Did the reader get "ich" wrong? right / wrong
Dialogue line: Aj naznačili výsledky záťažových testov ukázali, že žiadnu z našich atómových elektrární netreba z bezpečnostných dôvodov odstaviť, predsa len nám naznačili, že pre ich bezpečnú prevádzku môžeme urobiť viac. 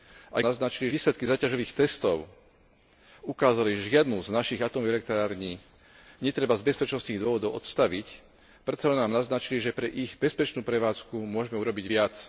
right